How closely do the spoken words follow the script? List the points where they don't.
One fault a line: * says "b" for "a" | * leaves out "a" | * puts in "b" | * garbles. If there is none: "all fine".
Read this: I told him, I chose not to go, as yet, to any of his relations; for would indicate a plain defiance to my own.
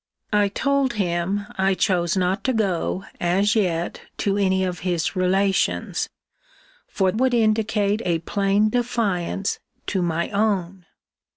all fine